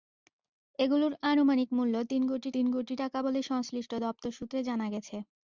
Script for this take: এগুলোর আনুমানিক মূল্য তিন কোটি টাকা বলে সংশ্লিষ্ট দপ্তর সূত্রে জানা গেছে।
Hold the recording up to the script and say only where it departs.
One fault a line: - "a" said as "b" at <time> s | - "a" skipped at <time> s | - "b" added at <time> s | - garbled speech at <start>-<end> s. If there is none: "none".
- "তিন কোটি" added at 2.5 s